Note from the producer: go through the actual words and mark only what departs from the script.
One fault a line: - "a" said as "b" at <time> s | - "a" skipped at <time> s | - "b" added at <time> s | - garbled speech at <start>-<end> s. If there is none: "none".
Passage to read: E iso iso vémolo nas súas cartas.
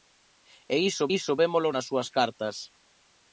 none